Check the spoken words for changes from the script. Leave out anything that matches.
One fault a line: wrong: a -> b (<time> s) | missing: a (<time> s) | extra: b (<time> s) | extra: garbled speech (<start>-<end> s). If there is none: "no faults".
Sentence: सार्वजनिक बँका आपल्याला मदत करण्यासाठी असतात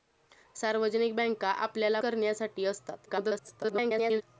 missing: मदत (2.0 s)
extra: garbled speech (3.1-4.2 s)